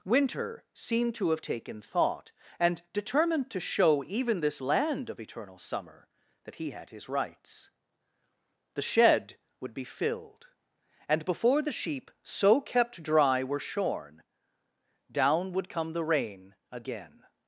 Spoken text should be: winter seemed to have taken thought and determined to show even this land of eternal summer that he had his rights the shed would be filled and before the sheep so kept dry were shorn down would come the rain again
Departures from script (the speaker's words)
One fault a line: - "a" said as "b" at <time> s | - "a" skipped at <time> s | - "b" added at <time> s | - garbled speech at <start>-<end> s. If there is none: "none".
none